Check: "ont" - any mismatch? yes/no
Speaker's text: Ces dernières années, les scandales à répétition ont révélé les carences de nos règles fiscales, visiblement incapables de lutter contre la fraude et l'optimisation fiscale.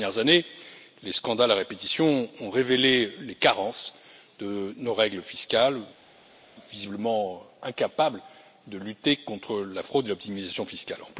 no